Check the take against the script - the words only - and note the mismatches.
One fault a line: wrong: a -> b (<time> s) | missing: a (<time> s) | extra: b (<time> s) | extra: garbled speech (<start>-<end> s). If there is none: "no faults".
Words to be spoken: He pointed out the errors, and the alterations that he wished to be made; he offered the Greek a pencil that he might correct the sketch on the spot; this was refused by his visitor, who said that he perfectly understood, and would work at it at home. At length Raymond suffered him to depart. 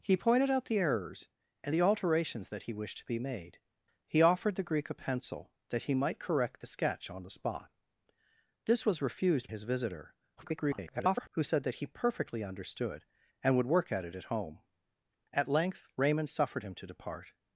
missing: by (9.5 s)
extra: garbled speech (10.4-11.3 s)